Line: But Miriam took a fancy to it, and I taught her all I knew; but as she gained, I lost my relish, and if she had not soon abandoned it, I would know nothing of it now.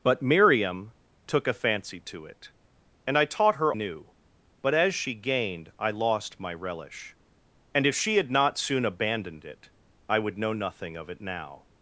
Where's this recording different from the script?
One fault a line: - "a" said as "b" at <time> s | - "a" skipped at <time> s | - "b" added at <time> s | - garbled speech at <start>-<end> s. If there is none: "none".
- "all I" skipped at 3.7 s